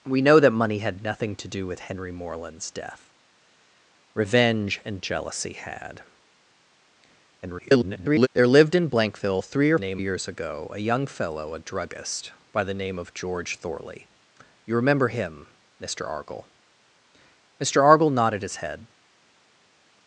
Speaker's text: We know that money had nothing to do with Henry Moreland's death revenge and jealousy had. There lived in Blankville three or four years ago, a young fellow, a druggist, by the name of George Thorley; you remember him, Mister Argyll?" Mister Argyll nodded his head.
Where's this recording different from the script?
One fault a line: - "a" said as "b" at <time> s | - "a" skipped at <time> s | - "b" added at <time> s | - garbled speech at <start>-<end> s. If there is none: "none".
- garbled speech at 7.4-8.3 s
- "four" said as "name" at 9.8 s